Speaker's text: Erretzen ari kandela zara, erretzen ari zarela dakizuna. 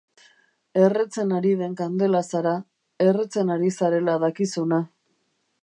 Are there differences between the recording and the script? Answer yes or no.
yes